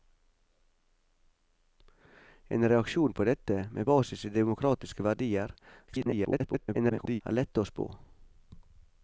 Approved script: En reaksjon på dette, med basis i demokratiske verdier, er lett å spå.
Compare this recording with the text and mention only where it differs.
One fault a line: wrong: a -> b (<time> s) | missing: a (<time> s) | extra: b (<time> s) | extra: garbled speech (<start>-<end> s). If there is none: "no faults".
extra: garbled speech (5.9-7.2 s)